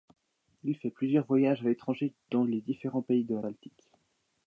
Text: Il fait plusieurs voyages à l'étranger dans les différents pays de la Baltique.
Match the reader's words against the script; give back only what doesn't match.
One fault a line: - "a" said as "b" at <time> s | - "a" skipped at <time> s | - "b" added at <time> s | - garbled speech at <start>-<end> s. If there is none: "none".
none